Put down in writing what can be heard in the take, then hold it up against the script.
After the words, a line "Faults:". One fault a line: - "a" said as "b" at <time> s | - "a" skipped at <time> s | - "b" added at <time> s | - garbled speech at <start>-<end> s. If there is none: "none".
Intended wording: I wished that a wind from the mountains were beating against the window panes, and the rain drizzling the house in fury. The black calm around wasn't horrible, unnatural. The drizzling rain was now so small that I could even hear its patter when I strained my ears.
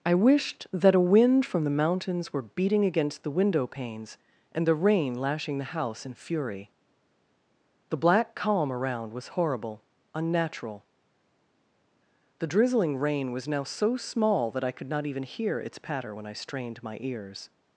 I wished that a wind from the mountains were beating against the window panes, and the rain lashing the house in fury. The black calm around was horrible, unnatural. The drizzling rain was now so small that I could not even hear its patter when I strained my ears.
Faults:
- "drizzling" said as "lashing" at 5.1 s
- "wasn't" said as "was" at 9.1 s
- "not" added at 14.9 s